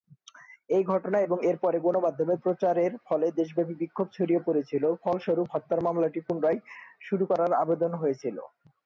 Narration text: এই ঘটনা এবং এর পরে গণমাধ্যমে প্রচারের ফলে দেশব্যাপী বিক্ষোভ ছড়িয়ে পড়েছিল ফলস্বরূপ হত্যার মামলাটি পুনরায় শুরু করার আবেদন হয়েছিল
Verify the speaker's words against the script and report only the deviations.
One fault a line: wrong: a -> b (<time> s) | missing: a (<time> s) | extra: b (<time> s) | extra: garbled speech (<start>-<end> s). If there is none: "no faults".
no faults